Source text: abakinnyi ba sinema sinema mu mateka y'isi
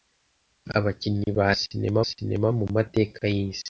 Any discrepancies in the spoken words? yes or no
no